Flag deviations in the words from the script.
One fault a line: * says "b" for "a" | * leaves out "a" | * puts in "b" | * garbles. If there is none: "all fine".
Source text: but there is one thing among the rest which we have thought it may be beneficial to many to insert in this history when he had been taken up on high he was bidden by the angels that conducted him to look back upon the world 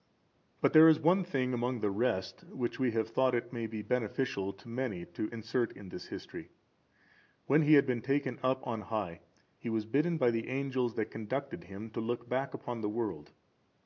all fine